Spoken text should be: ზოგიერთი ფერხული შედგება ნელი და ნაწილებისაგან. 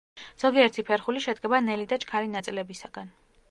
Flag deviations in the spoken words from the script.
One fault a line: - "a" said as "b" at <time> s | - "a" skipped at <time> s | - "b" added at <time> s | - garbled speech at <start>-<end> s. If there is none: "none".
- "ჩქარი" added at 2.1 s